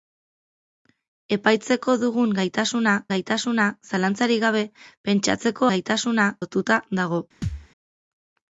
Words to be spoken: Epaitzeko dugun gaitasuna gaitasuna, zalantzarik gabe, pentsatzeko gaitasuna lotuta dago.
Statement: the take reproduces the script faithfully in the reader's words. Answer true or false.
true